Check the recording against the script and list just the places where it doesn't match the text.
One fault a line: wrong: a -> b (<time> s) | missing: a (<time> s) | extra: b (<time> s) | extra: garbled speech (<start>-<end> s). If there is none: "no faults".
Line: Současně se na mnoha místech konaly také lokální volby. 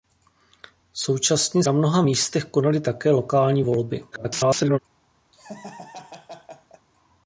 missing: se (1.6 s)
extra: garbled speech (4.1-4.8 s)